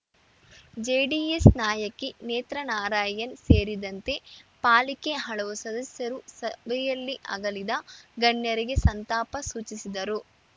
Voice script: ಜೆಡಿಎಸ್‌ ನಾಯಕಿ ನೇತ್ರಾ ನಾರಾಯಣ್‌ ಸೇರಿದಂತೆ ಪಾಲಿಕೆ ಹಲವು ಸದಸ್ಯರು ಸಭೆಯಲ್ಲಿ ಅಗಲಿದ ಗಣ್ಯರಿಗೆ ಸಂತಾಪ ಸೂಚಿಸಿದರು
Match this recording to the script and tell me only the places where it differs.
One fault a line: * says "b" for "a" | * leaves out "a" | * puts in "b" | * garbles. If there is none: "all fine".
all fine